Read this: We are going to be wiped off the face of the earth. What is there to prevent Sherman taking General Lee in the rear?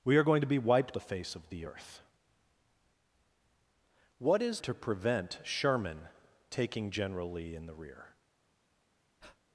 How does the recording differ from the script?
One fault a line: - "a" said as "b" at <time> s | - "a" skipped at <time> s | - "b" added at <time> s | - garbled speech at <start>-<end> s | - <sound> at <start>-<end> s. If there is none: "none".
- "off" skipped at 1.0 s
- "there" skipped at 4.6 s
- breath at 9.2-9.4 s